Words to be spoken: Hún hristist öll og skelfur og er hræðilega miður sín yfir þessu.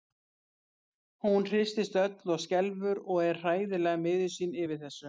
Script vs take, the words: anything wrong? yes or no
no